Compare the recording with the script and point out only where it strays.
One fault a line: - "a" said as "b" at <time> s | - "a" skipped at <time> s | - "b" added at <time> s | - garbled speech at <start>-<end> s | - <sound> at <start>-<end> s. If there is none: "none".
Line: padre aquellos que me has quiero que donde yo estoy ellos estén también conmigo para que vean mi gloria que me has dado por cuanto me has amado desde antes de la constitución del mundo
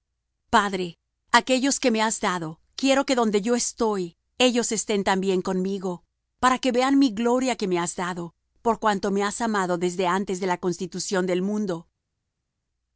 - "dado" added at 2.2 s